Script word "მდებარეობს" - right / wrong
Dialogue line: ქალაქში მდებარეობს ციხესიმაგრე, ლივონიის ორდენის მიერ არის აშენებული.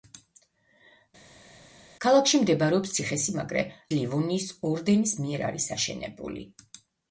right